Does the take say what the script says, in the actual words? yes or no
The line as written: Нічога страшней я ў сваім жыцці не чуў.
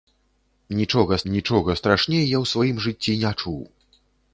no